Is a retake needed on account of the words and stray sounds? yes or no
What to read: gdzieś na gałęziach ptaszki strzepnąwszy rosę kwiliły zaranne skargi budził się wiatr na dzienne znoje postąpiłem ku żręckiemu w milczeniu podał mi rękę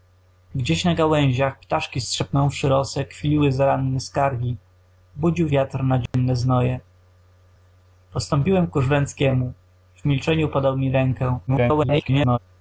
yes